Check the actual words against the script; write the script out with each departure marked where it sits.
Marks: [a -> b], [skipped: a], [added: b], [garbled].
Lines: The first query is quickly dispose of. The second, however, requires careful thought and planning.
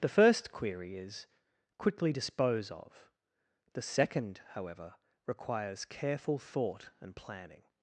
The first query is quickly dispose of. The second, however, requires careful thought and planning.